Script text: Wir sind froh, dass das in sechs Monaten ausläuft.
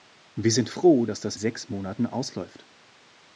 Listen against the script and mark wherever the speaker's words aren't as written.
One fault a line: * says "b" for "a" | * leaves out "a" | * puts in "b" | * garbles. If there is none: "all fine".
* leaves out "in"